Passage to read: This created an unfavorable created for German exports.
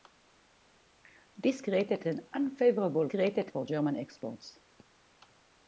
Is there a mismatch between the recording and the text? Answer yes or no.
no